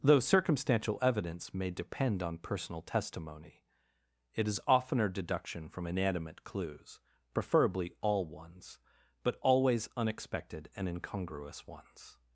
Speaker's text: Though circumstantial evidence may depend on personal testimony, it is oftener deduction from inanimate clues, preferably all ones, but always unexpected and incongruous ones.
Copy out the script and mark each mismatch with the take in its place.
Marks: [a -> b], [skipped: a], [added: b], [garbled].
Though circumstantial evidence may depend on personal testimony, it is oftener deduction from inanimate clues, preferably all ones, but always unexpected and incongruous ones.